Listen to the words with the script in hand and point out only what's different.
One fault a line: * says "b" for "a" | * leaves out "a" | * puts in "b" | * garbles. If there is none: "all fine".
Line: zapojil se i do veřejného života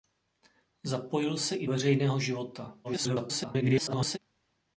* leaves out "do"
* garbles